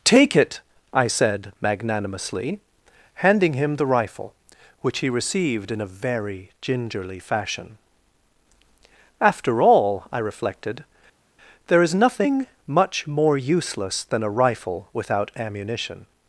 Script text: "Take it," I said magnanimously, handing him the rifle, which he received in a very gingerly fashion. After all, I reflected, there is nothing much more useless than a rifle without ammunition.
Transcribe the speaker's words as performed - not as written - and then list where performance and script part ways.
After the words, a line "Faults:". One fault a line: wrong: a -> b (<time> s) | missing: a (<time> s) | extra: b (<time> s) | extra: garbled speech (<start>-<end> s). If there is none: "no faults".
"Take it," I said magnanimously, handing him the rifle, which he received in a very gingerly fashion. After all, I reflected, there is nothing much more useless than a rifle without ammunition.
Faults:
no faults